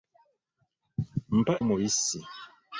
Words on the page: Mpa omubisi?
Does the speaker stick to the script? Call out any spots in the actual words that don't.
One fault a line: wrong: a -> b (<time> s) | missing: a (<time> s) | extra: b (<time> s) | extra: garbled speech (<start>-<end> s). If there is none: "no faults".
no faults